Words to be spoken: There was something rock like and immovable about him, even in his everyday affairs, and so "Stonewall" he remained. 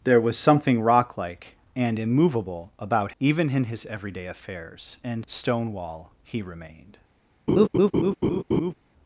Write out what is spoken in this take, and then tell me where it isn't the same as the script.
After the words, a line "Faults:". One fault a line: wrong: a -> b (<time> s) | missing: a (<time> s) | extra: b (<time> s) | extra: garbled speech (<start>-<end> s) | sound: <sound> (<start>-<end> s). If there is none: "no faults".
There was something rock like and immovable about even in his everyday affairs, and "Stonewall" he remained.
Faults:
missing: him (3.1 s)
missing: so (5.2 s)
sound: laugh (7.5-8.7 s)